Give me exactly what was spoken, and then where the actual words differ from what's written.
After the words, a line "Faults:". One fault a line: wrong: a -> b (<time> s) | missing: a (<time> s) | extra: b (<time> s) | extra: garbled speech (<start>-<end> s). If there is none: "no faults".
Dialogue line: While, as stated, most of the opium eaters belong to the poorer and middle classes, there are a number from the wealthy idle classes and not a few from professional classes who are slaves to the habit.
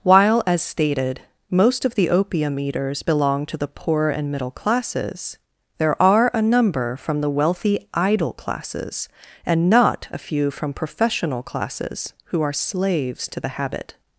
While, as stated, most of the opium eaters belong to the poor and middle classes, there are a number from the wealthy idle classes and not a few from professional classes who are slaves to the habit.
Faults:
wrong: poorer -> poor (3.7 s)